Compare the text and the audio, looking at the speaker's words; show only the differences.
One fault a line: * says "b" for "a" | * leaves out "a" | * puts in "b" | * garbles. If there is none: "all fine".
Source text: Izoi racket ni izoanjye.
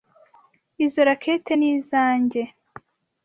all fine